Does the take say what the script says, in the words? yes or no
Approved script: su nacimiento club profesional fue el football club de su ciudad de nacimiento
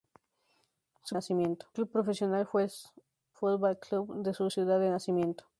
yes